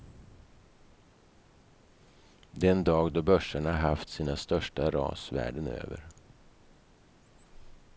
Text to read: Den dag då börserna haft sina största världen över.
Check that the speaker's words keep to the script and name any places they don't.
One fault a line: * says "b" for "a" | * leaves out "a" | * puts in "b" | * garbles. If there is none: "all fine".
* puts in "ras"